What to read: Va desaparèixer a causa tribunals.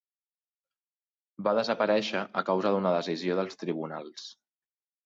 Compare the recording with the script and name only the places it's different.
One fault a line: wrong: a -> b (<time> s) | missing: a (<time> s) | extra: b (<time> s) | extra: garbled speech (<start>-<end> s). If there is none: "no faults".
extra: d'una decisió dels (2.8 s)